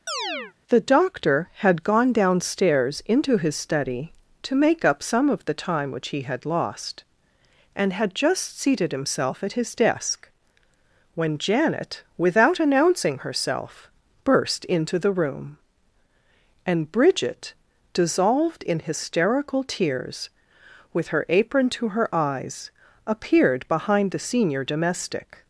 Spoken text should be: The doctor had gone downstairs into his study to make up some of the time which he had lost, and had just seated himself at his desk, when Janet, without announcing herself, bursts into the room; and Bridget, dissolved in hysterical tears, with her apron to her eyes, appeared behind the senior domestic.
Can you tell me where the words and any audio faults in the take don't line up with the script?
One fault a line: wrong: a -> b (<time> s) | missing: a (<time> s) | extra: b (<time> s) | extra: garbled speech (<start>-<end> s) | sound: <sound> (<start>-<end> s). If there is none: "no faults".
sound: chirp (0.1-0.5 s)
wrong: bursts -> burst (14.2 s)